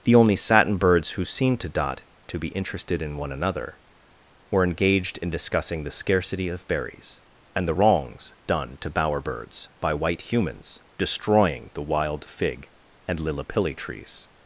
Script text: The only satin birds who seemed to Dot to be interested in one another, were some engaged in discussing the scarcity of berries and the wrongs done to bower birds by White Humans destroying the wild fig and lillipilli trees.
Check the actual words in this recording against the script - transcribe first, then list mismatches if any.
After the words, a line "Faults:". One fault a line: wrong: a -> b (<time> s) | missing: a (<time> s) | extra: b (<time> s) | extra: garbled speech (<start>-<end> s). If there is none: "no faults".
The only satin birds who seemed to Dot to be interested in one another, were engaged in discussing the scarcity of berries and the wrongs done to bower birds by White Humans destroying the wild fig and lillipilli trees.
Faults:
missing: some (4.6 s)